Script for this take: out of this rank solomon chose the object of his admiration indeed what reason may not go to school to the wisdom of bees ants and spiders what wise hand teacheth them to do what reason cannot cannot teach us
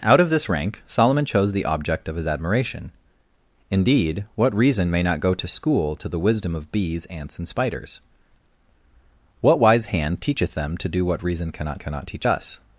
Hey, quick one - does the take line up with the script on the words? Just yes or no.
yes